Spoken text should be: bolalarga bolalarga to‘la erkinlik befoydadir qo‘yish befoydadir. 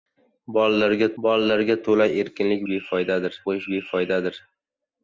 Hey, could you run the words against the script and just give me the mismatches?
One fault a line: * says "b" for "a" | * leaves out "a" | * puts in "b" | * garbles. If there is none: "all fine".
all fine